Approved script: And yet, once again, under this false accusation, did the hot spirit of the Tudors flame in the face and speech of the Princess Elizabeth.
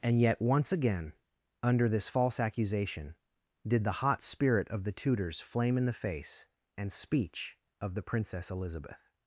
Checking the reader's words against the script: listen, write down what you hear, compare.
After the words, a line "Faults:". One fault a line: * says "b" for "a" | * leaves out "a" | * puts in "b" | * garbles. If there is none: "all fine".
And yet, once again, under this false accusation, did the hot spirit of the Tudors flame in the face and speech of the Princess Elizabeth.
Faults:
all fine